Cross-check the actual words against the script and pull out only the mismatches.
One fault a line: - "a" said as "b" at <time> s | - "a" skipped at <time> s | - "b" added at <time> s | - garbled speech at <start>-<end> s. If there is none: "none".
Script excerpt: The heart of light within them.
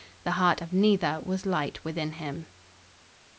- "neither was" added at 0.7 s
- "them" said as "him" at 2.1 s